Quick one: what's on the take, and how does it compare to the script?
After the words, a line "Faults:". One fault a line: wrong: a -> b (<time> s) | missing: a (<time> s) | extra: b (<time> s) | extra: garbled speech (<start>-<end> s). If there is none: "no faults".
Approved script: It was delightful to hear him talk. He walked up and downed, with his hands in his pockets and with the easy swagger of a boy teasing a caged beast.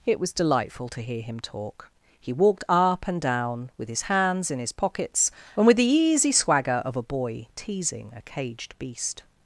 It was delightful to hear him talk. He walked up and down, with his hands in his pockets and with the easy swagger of a boy teasing a caged beast.
Faults:
wrong: downed -> down (3.2 s)